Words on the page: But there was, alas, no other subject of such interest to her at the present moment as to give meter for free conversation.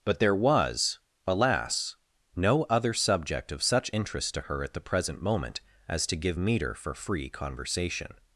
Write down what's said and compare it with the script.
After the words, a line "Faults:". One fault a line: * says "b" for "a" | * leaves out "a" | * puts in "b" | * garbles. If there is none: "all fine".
But there was, alas, no other subject of such interest to her at the present moment as to give meter for free conversation.
Faults:
all fine